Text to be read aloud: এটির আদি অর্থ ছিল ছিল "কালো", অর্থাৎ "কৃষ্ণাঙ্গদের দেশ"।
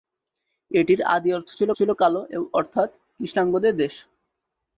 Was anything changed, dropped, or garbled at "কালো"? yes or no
no